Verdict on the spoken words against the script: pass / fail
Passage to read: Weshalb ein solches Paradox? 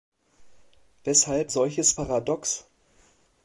fail